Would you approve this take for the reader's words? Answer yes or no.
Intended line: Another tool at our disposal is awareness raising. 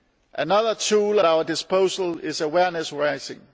no